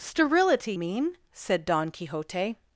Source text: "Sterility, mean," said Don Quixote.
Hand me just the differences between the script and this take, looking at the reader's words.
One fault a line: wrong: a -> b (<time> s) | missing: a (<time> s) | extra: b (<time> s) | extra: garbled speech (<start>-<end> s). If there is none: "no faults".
no faults